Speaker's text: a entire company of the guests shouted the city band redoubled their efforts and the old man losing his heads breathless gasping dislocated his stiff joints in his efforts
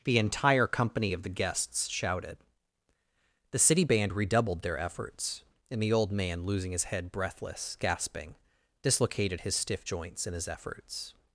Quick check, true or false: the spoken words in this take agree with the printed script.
false